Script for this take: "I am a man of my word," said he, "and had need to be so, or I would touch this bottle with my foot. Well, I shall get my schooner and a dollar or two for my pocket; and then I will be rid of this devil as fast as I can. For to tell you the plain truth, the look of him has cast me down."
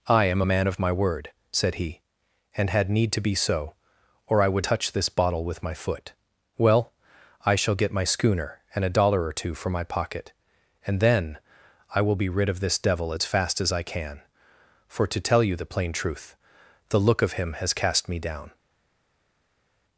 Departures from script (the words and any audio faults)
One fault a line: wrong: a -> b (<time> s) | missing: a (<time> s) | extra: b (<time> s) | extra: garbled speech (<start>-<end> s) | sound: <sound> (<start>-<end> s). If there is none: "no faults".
no faults